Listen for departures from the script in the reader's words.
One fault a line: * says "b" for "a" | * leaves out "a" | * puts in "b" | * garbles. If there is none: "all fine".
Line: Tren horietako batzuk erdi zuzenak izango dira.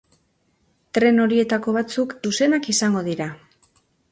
* leaves out "erdi"